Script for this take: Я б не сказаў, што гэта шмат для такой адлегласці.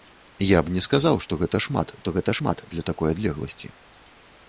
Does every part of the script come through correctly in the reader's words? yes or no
no